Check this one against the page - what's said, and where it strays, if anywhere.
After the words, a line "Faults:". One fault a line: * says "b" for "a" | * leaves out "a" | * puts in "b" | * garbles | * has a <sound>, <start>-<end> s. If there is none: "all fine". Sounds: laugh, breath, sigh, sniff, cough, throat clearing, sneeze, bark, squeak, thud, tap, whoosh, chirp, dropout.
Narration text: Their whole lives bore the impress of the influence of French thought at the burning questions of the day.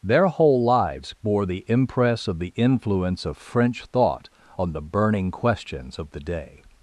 Their whole lives bore the impress of the influence of French thought on the burning questions of the day.
Faults:
* says "on" for "at"